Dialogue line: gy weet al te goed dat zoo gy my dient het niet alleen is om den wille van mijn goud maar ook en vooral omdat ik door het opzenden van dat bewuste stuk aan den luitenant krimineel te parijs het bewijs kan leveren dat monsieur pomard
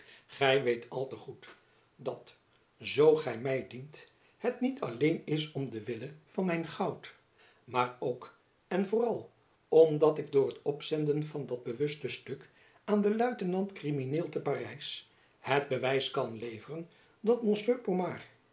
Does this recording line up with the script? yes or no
yes